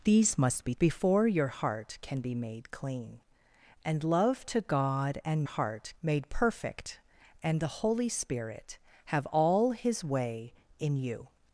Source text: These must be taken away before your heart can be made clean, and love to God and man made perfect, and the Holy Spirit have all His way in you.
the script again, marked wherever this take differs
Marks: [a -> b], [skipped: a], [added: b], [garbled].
These must be [skipped: taken away] before your heart can be made clean, and love to God and [man -> heart] made perfect, and the Holy Spirit have all His way in you.